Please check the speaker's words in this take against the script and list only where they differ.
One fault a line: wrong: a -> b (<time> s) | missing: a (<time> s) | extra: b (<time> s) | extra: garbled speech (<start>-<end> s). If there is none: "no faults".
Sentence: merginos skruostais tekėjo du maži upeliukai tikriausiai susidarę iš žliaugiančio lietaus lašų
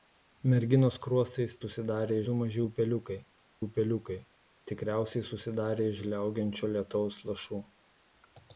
wrong: tekėjo -> susidarę (1.6 s)
extra: upeliukai (3.6 s)